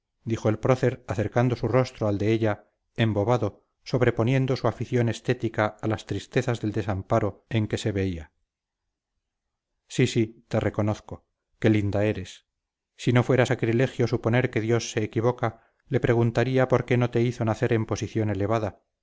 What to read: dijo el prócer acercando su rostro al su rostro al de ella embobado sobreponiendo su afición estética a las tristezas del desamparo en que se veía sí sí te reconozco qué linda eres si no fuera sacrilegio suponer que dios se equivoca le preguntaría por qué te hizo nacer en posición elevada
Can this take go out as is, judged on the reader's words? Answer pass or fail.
fail